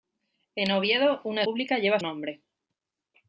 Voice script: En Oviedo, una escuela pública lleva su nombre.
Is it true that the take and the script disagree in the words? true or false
true